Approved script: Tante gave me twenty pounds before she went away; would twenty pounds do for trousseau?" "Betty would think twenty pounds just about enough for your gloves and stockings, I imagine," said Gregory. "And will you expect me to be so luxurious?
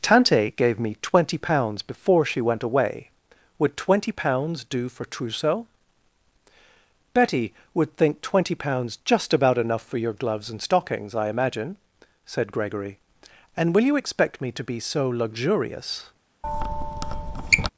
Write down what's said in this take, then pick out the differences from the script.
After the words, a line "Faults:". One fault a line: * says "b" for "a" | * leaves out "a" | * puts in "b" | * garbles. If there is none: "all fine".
Tante gave me twenty pounds before she went away; would twenty pounds do for trousseau?" "Betty would think twenty pounds just about enough for your gloves and stockings, I imagine," said Gregory. "And will you expect me to be so luxurious?
Faults:
all fine